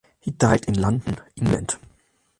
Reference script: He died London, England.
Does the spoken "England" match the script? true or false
true